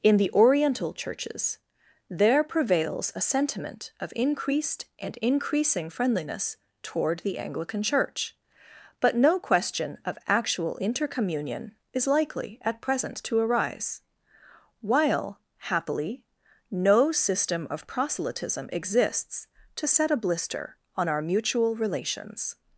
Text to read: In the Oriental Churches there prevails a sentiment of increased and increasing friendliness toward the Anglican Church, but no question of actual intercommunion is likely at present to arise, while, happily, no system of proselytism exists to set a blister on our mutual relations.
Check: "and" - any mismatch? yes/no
no